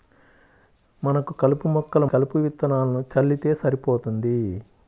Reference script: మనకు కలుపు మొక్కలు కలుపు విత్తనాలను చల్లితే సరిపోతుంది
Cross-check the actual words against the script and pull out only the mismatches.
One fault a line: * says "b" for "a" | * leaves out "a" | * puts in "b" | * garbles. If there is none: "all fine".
all fine